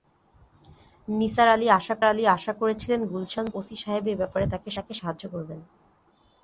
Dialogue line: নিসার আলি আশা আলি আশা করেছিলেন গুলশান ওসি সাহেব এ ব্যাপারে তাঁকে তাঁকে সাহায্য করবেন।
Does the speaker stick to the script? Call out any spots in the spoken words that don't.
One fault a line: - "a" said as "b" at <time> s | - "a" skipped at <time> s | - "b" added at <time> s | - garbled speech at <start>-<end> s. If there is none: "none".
none